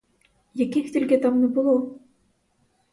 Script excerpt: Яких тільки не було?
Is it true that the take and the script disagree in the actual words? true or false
true